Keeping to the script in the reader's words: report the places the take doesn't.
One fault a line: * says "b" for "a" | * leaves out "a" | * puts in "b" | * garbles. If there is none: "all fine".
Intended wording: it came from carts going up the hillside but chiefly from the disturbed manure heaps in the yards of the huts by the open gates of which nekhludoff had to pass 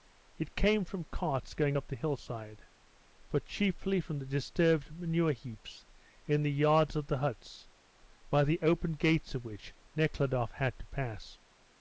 all fine